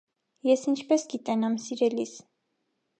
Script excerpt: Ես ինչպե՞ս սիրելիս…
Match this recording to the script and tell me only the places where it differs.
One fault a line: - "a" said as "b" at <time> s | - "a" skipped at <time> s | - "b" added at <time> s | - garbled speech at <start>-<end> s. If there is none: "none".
- "գիտենամ" added at 1.2 s